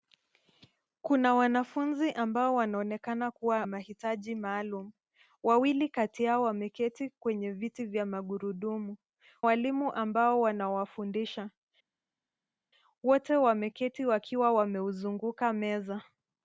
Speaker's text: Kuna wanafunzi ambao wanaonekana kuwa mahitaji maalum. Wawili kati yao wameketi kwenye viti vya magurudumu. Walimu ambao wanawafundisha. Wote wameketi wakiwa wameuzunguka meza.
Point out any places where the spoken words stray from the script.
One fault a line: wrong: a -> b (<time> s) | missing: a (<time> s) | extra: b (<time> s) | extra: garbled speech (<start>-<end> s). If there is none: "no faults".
no faults